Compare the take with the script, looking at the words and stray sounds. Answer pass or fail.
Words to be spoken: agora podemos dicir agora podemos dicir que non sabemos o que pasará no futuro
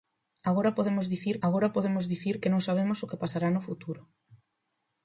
pass